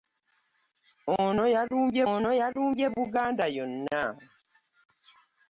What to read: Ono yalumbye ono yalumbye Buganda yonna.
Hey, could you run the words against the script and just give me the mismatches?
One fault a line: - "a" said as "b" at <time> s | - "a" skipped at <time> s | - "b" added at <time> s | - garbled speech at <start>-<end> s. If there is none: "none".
none